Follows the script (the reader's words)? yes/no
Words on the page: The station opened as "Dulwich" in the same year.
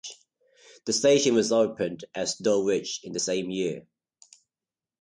no